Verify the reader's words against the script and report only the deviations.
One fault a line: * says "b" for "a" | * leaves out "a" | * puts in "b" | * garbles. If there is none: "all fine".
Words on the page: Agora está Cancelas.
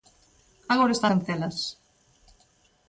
all fine